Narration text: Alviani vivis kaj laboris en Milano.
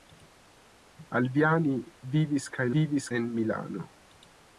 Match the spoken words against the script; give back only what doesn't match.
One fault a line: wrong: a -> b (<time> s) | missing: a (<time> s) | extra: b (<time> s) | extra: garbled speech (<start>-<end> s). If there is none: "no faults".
wrong: laboris -> vivis (2.8 s)